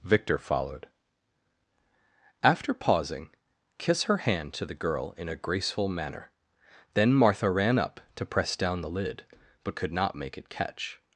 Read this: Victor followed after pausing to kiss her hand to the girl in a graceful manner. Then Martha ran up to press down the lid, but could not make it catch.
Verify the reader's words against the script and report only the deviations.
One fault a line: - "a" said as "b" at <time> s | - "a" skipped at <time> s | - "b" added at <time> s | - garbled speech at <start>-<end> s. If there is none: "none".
- "to" skipped at 3.3 s